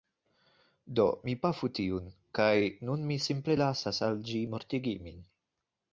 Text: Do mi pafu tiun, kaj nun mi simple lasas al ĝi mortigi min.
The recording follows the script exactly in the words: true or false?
true